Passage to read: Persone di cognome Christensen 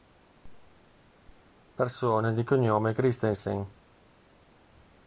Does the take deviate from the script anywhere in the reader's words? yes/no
no